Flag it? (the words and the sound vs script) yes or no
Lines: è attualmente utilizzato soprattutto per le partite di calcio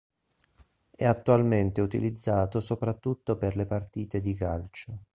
no